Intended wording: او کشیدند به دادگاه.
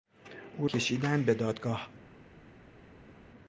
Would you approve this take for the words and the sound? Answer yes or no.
yes